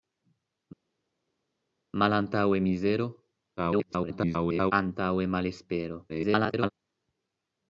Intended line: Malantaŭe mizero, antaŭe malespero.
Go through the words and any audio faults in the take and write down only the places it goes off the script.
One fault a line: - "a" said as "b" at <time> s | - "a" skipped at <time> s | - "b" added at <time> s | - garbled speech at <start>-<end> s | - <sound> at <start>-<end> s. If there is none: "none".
- garbled speech at 3.6-4.7 s
- garbled speech at 6.1-6.7 s